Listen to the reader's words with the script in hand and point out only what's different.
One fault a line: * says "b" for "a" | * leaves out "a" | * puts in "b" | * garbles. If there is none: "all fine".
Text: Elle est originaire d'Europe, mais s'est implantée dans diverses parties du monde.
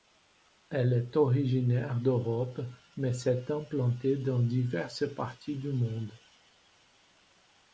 all fine